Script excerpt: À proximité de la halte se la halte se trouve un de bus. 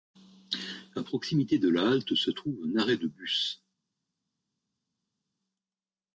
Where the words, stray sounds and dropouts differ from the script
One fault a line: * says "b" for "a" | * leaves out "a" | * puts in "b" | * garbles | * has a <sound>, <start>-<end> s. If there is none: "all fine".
* leaves out "la halte se"
* puts in "arrêt"